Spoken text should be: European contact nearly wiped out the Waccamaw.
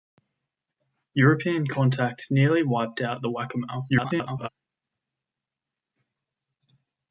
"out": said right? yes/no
yes